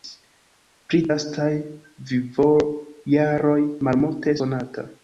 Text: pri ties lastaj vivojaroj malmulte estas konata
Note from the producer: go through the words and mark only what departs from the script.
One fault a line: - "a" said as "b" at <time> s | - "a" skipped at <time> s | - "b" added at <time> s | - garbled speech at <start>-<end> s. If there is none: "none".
- "ties" skipped at 1.0 s
- "estas" skipped at 4.4 s